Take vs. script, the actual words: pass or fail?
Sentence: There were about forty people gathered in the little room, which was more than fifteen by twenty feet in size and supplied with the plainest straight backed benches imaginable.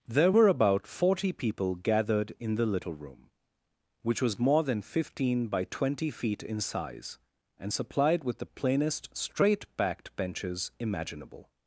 pass